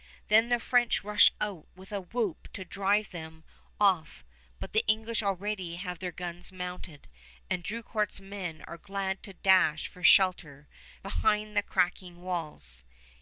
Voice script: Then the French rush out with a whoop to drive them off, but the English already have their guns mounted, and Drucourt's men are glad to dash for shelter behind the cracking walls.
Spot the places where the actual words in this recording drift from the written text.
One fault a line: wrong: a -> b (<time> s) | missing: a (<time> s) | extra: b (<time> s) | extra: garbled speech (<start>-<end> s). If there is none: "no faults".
no faults